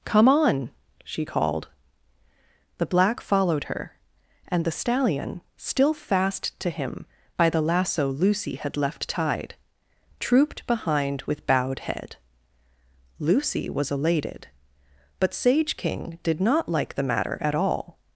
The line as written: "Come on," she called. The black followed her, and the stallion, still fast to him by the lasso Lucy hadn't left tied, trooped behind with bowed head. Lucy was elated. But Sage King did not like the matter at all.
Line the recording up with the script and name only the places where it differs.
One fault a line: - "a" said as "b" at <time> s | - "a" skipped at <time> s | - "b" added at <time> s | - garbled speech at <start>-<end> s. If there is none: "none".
- "hadn't" said as "had" at 8.6 s